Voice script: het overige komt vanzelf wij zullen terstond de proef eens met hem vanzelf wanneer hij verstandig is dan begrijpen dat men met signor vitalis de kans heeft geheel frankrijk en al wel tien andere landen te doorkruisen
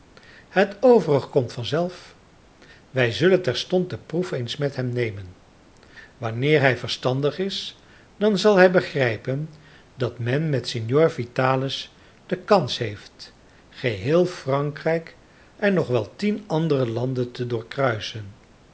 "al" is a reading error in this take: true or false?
true